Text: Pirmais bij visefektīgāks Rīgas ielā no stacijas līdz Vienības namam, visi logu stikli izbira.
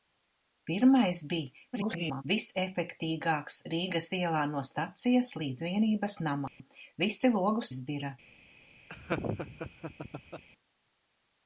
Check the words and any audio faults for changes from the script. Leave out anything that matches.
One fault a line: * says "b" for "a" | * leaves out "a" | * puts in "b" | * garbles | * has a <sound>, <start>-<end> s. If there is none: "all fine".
* garbles
* has a dropout, 6.5-6.6 s
* leaves out "stikli"
* has a laugh, 8.9-10.4 s